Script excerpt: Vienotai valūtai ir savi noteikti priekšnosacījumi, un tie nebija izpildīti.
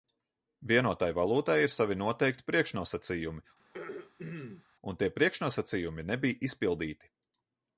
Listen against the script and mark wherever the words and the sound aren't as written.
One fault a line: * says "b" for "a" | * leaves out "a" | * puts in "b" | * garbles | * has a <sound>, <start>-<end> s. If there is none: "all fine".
* has a throat clearing, 3.6-4.7 s
* puts in "priekšnosacījumi"